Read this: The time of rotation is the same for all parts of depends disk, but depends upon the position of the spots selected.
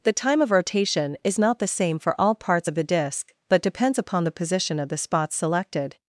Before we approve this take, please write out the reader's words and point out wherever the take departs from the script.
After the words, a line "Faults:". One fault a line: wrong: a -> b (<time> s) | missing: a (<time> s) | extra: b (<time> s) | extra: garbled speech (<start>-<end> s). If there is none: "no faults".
The time of rotation is not the same for all parts of the disk, but depends upon the position of the spots selected.
Faults:
extra: not (1.4 s)
wrong: depends -> the (2.7 s)